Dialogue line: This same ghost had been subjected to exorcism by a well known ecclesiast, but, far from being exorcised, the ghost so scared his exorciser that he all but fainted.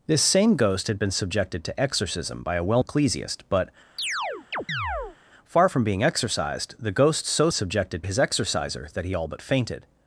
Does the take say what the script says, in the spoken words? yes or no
no